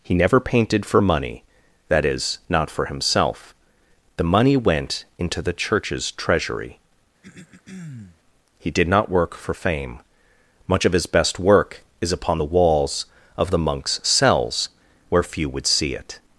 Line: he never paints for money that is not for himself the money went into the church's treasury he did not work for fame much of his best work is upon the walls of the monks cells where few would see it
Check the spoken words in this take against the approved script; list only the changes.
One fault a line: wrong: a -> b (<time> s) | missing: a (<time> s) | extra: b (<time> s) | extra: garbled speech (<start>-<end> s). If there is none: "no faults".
wrong: paints -> painted (0.4 s)